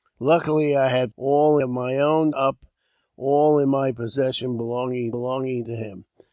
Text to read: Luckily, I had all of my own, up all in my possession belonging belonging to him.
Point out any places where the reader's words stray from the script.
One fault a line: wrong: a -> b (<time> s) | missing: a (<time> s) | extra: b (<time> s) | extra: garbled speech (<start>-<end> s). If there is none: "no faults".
no faults